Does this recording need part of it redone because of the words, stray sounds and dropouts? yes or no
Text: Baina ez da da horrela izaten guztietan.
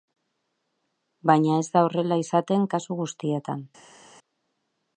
yes